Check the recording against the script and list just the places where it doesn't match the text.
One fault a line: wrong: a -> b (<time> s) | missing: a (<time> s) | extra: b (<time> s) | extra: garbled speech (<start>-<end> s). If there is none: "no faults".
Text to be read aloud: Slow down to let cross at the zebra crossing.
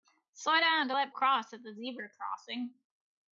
no faults